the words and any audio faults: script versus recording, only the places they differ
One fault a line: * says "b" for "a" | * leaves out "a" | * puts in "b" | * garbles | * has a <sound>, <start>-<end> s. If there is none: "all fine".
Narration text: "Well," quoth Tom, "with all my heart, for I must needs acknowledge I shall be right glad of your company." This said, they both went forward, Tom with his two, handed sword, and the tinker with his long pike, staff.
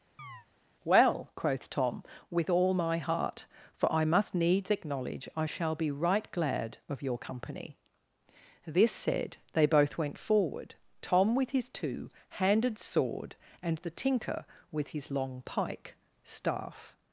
* has a chirp, 0.2-0.5 s